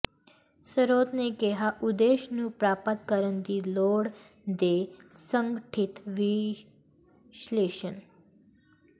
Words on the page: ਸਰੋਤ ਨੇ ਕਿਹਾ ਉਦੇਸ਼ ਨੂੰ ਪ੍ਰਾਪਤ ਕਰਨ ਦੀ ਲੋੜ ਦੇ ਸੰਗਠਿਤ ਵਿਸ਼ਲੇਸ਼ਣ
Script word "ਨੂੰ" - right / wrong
right